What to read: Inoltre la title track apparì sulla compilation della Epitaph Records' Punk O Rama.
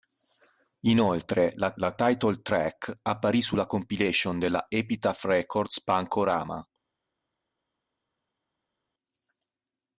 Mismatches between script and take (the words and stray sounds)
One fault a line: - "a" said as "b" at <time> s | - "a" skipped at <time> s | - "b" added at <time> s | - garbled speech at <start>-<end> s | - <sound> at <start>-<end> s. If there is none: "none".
- "la" added at 1.8 s